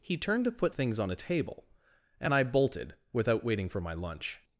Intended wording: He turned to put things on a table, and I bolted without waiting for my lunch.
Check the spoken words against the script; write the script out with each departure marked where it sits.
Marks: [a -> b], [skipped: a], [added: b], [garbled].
He turned to put things on a table, and I bolted without waiting for my lunch.